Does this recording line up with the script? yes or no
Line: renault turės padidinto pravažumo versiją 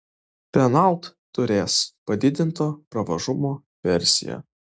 yes